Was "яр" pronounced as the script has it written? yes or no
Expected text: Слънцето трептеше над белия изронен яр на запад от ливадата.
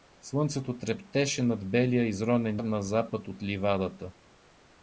no